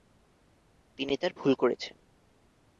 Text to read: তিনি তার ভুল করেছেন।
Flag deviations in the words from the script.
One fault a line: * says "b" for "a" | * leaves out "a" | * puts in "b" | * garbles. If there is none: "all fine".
all fine